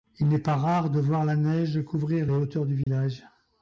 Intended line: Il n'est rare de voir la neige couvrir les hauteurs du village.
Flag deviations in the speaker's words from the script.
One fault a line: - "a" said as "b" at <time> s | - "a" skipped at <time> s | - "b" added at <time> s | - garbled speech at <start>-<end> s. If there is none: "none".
- "pas" added at 0.4 s